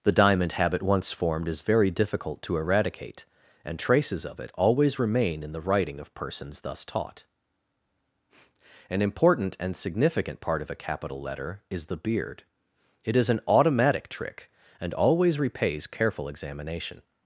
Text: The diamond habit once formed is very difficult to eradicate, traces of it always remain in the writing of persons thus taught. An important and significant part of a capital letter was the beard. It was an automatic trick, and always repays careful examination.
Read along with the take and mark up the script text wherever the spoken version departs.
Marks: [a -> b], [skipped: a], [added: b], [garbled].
The diamond habit once formed is very difficult to eradicate, [added: and] traces of it always remain in the writing of persons thus taught. An important and significant part of a capital letter [was -> is] the beard. It [was -> is] an automatic trick, and always repays careful examination.